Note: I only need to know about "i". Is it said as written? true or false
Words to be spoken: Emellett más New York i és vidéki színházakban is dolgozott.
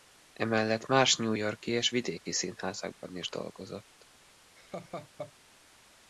true